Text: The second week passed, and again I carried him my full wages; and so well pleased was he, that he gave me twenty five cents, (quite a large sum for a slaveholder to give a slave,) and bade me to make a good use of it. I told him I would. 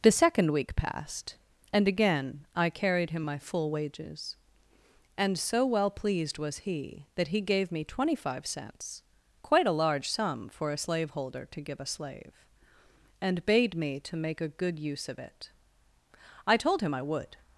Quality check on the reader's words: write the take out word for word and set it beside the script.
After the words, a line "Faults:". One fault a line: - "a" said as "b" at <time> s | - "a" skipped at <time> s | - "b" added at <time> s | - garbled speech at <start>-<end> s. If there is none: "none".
The second week passed, and again I carried him my full wages; and so well pleased was he, that he gave me twenty five cents, (quite a large sum for a slaveholder to give a slave,) and bade me to make a good use of it. I told him I would.
Faults:
none